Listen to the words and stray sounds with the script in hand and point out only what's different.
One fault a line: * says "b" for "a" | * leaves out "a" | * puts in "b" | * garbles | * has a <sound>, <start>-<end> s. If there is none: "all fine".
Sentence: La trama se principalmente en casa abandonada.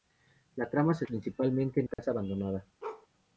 * has a dropout, 1.9-2.0 s
* has a bark, 2.8-3.1 s